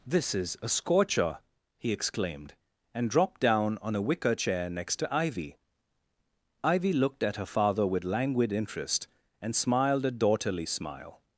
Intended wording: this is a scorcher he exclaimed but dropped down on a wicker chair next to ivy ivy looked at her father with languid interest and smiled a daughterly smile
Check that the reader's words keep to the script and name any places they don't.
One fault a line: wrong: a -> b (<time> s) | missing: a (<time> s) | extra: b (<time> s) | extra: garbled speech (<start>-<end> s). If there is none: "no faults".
wrong: but -> and (2.9 s)